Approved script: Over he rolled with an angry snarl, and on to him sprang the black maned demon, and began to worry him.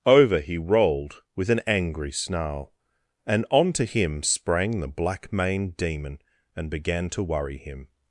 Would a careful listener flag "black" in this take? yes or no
no